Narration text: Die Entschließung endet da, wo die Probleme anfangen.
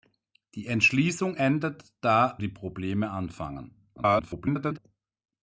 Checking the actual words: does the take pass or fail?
fail